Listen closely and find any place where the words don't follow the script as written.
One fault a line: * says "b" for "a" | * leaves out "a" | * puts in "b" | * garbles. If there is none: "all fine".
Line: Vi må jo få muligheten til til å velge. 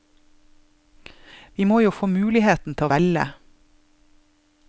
* leaves out "til"